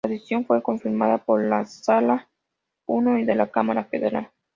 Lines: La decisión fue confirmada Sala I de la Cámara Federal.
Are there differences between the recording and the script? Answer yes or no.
yes